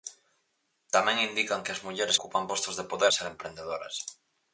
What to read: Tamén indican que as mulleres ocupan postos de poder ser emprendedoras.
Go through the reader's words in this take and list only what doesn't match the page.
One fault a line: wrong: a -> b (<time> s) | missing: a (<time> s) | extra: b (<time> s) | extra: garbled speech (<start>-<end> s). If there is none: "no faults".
no faults